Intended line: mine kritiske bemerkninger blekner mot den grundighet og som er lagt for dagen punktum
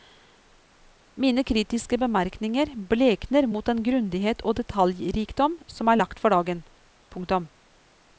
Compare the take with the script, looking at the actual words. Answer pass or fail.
fail